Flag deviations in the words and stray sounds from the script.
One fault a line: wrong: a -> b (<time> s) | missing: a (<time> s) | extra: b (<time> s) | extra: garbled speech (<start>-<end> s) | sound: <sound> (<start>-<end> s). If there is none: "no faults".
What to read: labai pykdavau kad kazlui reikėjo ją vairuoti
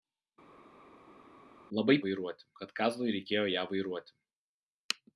wrong: pykdavau -> vairuoti (2.0 s)